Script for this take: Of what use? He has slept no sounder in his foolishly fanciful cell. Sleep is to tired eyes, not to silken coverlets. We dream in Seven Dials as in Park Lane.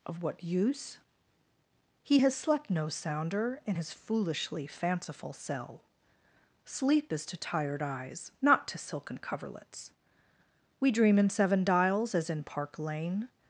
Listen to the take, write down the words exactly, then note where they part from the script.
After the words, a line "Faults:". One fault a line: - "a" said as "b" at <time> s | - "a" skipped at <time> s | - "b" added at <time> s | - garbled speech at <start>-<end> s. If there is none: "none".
Of what use? He has slept no sounder in his foolishly fanciful cell. Sleep is to tired eyes, not to silken coverlets. We dream in Seven Dials as in Park Lane.
Faults:
none